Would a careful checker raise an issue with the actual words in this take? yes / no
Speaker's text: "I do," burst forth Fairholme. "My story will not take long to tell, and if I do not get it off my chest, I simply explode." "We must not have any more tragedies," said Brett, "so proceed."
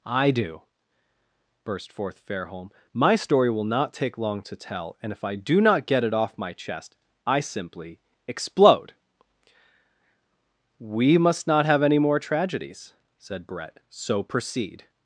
no